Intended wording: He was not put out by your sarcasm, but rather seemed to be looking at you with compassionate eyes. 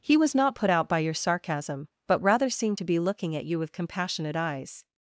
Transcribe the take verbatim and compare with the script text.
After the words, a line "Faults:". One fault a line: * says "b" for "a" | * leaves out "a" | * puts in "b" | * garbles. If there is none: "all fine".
He was not put out by your sarcasm, but rather seemed to be looking at you with compassionate eyes.
Faults:
all fine